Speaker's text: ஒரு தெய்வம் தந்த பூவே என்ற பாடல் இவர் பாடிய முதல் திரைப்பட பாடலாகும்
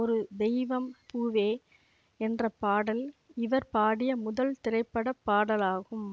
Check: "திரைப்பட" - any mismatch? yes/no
no